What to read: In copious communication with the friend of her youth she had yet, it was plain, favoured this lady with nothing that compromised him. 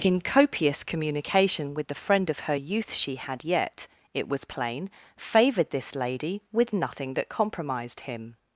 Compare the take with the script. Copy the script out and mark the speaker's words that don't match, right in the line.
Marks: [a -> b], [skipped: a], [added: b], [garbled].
In copious communication with the friend of her youth she had yet, it was plain, favoured this lady with nothing that compromised him.